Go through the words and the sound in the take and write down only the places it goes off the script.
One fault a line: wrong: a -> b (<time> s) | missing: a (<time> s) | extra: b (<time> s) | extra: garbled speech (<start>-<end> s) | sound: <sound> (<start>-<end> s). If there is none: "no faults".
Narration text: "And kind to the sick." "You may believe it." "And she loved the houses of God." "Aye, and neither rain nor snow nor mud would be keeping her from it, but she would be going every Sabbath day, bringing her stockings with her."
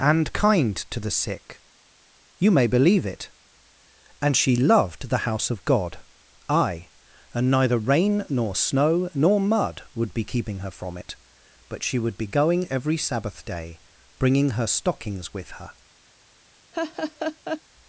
wrong: houses -> house (5.2 s)
sound: laugh (16.7-17.6 s)